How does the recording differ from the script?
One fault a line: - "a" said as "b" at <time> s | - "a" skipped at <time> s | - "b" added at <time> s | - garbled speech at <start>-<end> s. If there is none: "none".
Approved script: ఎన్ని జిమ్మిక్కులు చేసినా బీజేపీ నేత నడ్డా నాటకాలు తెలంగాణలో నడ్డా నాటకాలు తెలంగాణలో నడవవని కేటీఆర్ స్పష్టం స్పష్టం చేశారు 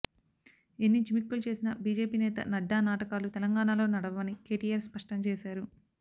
- "నడ్డా నాటకాలు తెలంగాణలో" skipped at 3.9 s
- "స్పష్టం" skipped at 5.2 s